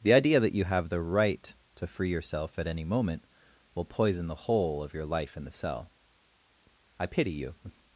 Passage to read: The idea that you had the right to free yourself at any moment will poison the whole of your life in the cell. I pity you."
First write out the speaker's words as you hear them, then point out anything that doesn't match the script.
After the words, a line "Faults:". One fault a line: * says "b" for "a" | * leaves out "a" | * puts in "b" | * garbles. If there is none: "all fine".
The idea that you have the right to free yourself at any moment will poison the whole of your life in the cell. I pity you."
Faults:
* says "have" for "had"